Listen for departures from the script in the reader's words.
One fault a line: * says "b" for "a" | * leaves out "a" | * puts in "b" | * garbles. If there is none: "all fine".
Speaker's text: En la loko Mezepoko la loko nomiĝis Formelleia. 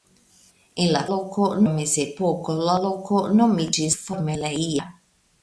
all fine